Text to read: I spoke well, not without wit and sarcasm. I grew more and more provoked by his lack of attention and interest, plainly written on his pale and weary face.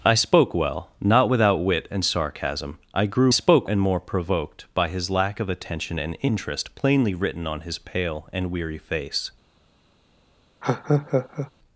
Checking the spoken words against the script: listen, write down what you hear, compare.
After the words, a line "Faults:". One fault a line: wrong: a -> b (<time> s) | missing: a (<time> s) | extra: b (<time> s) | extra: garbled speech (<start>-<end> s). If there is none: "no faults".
I spoke well, not without wit and sarcasm. I grew spoke and more provoked by his lack of attention and interest, plainly written on his pale and weary face.
Faults:
wrong: more -> spoke (3.3 s)